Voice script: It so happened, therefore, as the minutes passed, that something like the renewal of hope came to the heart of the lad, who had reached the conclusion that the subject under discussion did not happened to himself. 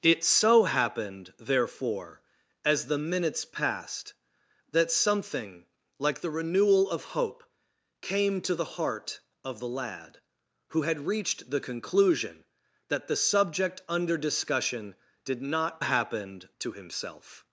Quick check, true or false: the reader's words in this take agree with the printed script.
true